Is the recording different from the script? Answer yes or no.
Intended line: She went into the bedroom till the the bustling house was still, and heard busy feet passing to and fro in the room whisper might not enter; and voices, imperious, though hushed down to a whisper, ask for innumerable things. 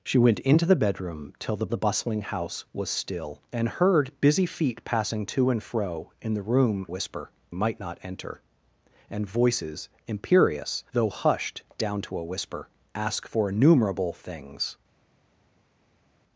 no